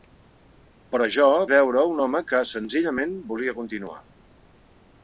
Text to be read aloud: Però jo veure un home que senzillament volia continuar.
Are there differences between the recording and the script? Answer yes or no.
no